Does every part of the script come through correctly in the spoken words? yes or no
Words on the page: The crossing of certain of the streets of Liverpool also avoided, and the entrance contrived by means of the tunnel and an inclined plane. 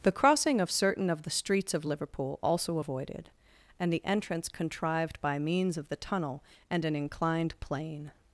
yes